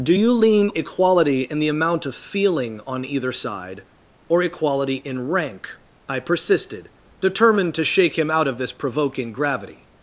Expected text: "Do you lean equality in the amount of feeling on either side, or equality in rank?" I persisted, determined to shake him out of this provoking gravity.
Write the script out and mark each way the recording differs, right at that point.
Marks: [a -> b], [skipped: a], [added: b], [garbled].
"Do you lean equality in the amount of feeling on either side, or equality in rank?" I persisted, determined to shake him out of this provoking gravity.